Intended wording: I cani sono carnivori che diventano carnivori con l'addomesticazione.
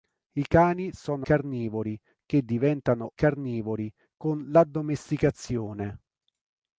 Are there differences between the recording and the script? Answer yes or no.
no